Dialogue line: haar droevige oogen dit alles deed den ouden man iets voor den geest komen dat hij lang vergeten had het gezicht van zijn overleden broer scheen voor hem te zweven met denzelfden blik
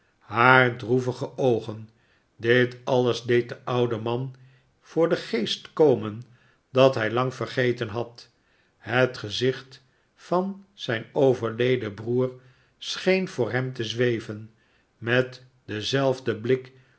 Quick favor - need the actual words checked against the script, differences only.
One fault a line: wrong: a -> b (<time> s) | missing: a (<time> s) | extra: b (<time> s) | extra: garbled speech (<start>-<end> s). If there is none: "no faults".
missing: iets (4.3 s)